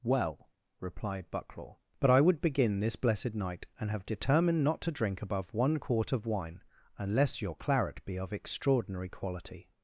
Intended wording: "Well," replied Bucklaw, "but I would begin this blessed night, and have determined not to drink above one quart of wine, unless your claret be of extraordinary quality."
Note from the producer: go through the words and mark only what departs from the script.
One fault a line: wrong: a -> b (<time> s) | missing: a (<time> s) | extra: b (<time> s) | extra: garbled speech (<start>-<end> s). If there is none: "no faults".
no faults